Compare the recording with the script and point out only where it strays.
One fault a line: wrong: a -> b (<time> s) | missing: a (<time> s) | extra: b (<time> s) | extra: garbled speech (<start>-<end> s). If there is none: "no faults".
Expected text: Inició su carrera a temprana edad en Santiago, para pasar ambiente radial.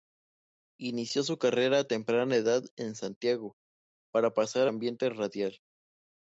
no faults